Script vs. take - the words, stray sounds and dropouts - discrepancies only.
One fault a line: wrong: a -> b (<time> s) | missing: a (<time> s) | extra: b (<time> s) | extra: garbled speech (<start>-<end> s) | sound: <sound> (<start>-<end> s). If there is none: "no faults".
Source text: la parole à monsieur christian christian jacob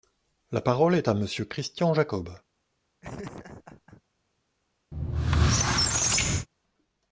extra: est (0.9 s)
missing: christian (1.9 s)
sound: laugh (3.0-4.0 s)
sound: squeak (4.9-6.5 s)